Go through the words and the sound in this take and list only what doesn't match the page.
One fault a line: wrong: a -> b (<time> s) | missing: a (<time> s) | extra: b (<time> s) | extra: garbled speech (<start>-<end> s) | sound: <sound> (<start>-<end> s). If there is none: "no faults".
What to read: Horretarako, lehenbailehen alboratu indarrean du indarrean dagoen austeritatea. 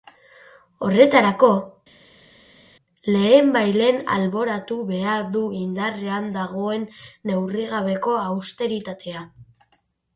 wrong: indarrean -> behar (4.9 s)
extra: neurrigabeko (7.3 s)